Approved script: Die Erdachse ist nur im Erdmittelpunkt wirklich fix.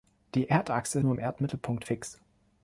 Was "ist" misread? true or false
true